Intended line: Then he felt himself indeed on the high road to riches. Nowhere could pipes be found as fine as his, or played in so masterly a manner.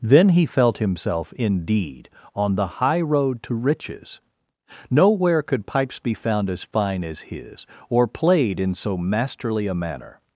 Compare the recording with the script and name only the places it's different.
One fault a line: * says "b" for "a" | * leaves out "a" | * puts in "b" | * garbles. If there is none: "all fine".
all fine